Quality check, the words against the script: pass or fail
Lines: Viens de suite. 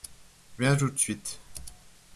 fail